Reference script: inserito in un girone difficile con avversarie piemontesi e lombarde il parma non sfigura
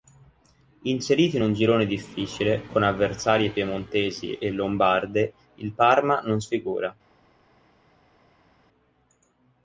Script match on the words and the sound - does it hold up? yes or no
yes